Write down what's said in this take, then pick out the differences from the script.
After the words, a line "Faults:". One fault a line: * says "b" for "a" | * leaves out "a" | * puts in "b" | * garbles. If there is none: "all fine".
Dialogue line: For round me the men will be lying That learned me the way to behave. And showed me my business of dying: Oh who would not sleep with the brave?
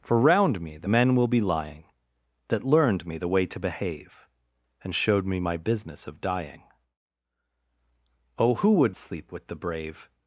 For round me the men will be lying That learned me the way to behave. And showed me my business of dying: Oh who would sleep with the brave?
Faults:
* leaves out "not"